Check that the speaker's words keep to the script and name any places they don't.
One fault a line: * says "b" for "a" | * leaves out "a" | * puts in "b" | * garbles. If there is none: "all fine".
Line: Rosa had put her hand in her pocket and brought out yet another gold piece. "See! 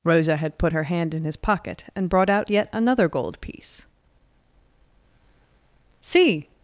* says "his" for "her"